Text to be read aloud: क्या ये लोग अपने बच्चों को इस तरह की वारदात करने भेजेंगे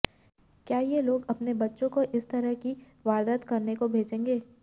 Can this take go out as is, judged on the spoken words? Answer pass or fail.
fail